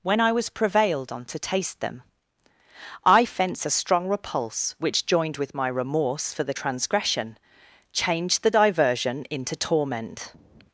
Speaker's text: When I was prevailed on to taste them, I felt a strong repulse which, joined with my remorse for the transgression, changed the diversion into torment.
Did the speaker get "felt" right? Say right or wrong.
wrong